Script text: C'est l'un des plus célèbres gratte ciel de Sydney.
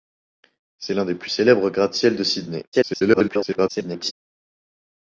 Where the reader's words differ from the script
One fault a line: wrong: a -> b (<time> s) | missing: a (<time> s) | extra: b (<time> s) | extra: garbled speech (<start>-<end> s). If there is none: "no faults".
extra: garbled speech (2.7-4.1 s)